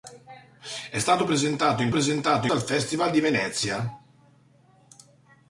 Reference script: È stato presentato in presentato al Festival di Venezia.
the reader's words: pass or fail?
pass